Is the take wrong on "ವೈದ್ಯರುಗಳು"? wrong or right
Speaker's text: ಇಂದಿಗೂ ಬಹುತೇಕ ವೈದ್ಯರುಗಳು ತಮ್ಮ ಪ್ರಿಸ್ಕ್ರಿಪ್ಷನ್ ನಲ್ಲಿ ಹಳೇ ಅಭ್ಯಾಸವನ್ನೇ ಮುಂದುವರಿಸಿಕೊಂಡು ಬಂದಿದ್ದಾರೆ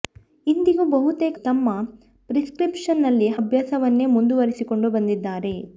wrong